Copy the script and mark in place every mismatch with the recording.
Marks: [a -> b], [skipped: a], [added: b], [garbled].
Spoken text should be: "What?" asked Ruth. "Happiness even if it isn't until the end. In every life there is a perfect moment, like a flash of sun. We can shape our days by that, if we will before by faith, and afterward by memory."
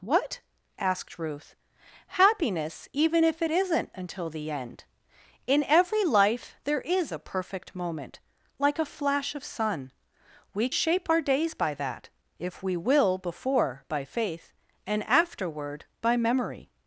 "What?" asked Ruth. "Happiness even if it isn't until the end. In every life there is a perfect moment, like a flash of sun. We [skipped: can] shape our days by that, if we will before by faith, and afterward by memory."